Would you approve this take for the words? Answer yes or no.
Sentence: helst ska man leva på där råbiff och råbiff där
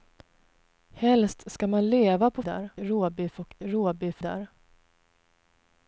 yes